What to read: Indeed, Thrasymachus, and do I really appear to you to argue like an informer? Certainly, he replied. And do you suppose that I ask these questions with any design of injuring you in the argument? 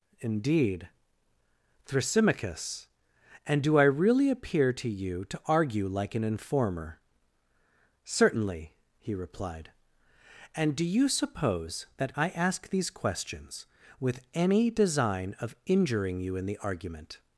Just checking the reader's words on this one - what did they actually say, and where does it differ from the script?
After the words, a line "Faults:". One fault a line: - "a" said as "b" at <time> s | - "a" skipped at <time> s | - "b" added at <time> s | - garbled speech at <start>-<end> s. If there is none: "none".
Indeed, Thrasymachus, and do I really appear to you to argue like an informer? Certainly, he replied. And do you suppose that I ask these questions with any design of injuring you in the argument?
Faults:
none